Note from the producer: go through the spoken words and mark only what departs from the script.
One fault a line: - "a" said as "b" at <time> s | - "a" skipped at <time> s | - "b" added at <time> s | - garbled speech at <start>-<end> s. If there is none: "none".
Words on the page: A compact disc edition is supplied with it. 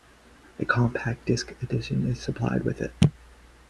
none